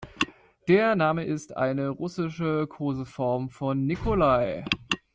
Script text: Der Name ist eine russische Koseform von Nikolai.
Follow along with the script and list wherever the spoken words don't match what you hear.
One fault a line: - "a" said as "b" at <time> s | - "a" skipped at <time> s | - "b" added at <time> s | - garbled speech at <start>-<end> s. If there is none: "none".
none